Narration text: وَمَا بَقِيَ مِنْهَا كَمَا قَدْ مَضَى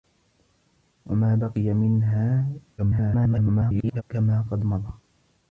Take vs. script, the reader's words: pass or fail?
fail